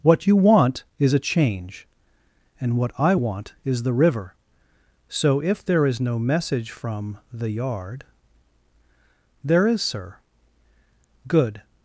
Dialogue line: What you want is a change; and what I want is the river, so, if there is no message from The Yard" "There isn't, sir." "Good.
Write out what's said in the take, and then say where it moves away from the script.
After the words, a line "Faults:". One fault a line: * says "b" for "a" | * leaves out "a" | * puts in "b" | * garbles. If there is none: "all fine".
What you want is a change; and what I want is the river, so, if there is no message from The Yard" "There is, sir." "Good.
Faults:
* says "is" for "isn't"